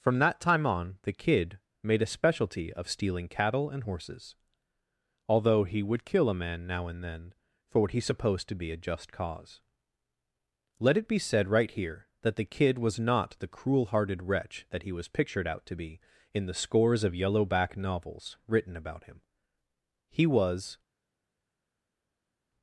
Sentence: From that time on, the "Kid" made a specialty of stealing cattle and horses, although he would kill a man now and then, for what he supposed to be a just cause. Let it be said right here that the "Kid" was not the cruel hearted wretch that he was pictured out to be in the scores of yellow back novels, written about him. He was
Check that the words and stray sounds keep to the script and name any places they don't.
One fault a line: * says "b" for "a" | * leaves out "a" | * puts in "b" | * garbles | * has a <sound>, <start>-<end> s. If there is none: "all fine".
all fine